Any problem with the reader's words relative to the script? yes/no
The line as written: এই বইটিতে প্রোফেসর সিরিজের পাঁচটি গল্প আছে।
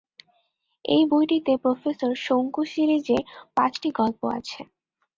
yes